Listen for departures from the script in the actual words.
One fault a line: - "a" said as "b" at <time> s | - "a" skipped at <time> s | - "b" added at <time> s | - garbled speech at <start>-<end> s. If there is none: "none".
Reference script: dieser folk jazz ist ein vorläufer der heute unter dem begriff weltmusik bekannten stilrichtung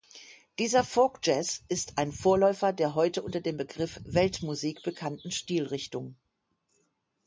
none